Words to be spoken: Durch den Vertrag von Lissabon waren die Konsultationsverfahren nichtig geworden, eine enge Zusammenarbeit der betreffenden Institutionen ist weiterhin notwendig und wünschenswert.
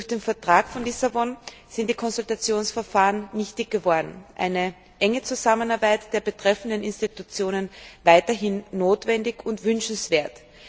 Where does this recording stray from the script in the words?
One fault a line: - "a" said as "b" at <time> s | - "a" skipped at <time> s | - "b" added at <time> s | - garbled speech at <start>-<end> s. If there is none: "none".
- "waren" said as "sind" at 1.7 s